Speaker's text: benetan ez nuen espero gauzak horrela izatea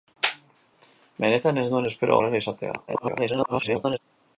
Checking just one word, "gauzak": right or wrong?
wrong